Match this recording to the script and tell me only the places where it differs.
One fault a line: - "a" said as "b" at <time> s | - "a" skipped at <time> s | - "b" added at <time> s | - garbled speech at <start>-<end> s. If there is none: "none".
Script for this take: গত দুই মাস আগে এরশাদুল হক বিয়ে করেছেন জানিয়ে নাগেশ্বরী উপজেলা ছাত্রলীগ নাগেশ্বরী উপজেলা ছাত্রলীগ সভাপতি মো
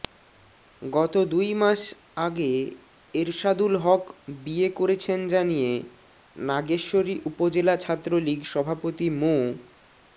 - "নাগেশ্বরী উপজেলা ছাত্রলীগ" skipped at 8.4 s